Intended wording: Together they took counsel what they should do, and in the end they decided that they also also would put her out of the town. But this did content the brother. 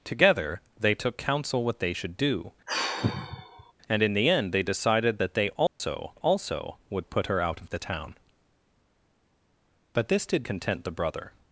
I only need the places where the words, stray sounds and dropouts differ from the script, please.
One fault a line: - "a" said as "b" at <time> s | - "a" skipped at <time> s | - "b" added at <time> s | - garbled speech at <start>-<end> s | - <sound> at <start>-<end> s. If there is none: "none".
- sigh at 2.7-3.7 s
- dropout at 5.7-5.8 s